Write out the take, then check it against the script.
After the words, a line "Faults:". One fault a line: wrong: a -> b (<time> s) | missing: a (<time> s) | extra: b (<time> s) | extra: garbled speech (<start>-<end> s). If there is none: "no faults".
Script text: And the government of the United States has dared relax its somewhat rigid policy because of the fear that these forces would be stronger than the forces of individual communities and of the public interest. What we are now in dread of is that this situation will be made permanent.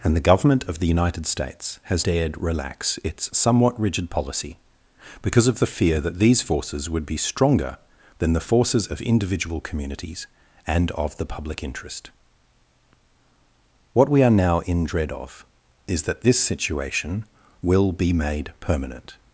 And the government of the United States has dared relax its somewhat rigid policy because of the fear that these forces would be stronger than the forces of individual communities and of the public interest. What we are now in dread of is that this situation will be made permanent.
Faults:
no faults